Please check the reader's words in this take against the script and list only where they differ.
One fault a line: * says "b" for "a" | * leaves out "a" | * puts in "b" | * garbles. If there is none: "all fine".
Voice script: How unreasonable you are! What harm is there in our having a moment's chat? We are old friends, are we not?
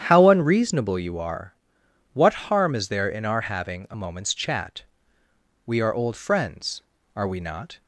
all fine